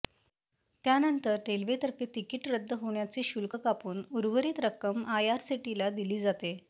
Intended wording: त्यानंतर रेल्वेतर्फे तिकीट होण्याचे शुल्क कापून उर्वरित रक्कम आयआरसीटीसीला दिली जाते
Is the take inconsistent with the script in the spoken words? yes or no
yes